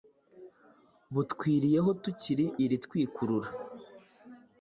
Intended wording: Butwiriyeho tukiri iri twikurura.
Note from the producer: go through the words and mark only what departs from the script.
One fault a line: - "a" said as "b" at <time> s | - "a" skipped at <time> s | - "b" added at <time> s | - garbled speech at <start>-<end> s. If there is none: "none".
none